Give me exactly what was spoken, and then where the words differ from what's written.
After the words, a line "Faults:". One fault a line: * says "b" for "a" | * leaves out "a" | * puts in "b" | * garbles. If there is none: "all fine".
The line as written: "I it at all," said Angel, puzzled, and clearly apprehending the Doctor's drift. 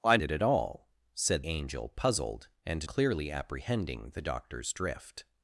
"I it at all," said Angel, puzzled, and clearly apprehending the Doctor's drift.
Faults:
all fine